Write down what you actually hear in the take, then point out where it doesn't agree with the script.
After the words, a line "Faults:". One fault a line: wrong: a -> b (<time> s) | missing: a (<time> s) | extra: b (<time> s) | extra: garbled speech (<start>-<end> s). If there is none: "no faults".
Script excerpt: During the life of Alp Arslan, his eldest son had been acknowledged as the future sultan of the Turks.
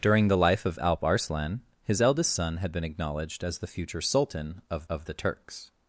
During the life of Alp Arslan, his eldest son had been acknowledged as the future sultan of of the Turks.
Faults:
extra: of (4.9 s)